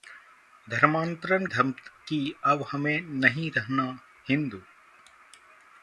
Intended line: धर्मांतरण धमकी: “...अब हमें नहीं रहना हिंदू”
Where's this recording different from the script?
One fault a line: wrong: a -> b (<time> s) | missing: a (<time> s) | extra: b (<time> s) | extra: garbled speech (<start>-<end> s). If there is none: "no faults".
no faults